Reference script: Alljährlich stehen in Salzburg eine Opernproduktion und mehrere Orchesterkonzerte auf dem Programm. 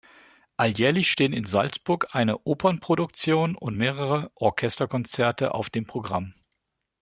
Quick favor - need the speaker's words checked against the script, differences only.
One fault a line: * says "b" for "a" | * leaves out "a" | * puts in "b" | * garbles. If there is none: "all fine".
all fine